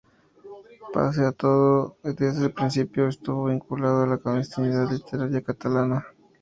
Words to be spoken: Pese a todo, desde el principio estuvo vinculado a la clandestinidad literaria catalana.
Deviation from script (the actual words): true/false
false